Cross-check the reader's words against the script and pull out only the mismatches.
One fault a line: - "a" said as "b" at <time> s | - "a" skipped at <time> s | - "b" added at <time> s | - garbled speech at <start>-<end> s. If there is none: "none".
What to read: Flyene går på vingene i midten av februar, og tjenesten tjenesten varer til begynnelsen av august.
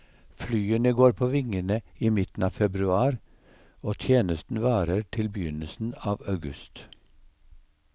- "tjenesten" skipped at 4.6 s